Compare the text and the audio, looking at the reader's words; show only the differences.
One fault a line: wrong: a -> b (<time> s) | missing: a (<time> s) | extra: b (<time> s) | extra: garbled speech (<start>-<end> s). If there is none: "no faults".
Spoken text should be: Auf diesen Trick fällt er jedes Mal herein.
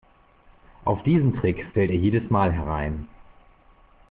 no faults